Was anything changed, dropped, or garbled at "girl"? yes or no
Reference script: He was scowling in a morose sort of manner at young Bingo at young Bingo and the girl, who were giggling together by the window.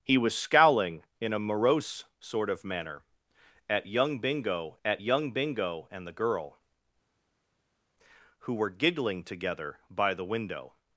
no